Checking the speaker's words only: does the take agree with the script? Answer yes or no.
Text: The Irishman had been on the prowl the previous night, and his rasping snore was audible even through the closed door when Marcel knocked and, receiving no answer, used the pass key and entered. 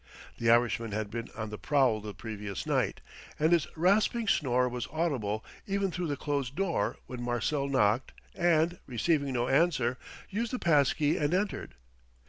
yes